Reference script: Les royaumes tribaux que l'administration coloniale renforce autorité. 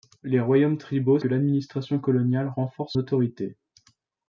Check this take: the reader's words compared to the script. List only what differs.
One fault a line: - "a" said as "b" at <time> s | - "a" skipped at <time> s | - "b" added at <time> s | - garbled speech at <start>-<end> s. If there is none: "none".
none